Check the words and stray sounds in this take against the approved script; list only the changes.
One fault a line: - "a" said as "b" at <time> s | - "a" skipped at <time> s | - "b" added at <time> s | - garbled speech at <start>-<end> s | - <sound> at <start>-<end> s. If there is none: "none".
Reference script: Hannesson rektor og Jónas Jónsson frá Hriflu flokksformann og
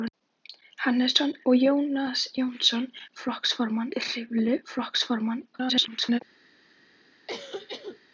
- "rektor" skipped at 1.3 s
- "frá" said as "flokksformann" at 3.2 s
- garbled speech at 5.5-6.2 s
- cough at 7.3-8.0 s